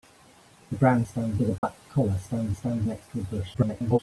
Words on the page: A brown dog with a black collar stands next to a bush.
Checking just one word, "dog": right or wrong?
wrong